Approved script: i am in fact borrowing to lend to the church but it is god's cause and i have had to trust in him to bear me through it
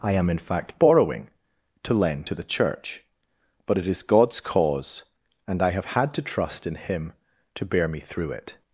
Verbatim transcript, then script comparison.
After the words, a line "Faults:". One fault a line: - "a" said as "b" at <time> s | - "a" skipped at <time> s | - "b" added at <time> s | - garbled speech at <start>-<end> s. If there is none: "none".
i am in fact borrowing to lend to the church but it is god's cause and i have had to trust in him to bear me through it
Faults:
none